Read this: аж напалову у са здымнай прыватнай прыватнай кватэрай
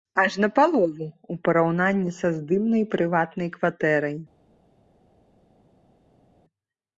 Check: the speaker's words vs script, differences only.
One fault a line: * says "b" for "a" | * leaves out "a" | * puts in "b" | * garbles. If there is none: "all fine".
* puts in "параўнанні"
* leaves out "прыватнай"